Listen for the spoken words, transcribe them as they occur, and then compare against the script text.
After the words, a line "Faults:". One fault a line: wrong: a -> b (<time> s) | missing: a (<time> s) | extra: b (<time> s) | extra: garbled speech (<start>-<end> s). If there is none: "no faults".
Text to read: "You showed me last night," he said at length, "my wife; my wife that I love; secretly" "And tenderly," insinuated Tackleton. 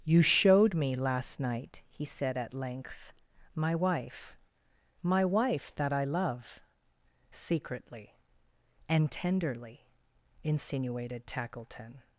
"You showed me last night," he said at length, "my wife; my wife that I love; secretly" "And tenderly," insinuated Tackleton.
Faults:
no faults